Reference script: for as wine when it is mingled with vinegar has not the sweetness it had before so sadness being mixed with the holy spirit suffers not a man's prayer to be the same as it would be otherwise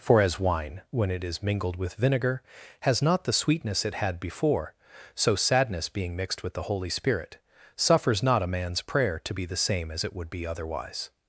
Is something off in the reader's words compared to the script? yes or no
no